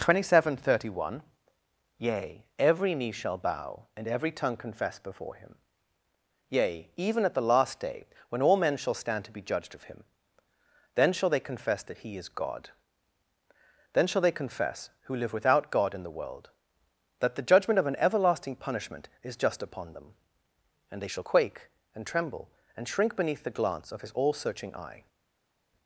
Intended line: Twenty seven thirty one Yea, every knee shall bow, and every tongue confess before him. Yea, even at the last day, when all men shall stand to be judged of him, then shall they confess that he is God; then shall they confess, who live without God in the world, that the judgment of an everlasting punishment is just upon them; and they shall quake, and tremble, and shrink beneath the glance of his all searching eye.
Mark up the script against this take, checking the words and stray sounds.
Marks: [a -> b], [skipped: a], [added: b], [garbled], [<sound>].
Twenty seven thirty one Yea, every knee shall bow, and every tongue confess before him. Yea, even at the last day, when all men shall stand to be judged of him, then shall they confess that he is God; then shall they confess, who live without God in the world, that the judgment of an everlasting punishment is just upon them; and they shall quake, and tremble, and shrink beneath the glance of his all searching eye.